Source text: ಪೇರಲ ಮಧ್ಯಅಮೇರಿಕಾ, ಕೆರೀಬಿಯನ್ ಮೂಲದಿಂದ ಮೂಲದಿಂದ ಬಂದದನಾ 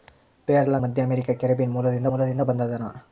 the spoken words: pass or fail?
pass